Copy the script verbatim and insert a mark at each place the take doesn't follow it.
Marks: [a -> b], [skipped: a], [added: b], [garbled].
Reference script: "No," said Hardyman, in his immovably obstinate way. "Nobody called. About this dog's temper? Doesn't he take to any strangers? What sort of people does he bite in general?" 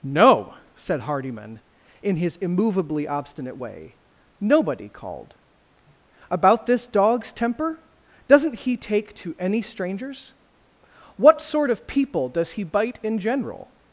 "No," said Hardyman, in his immovably obstinate way. "Nobody called. About this dog's temper? Doesn't he take to any strangers? What sort of people does he bite in general?"